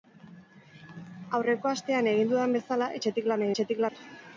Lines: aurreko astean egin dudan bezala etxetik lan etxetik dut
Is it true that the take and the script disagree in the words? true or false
false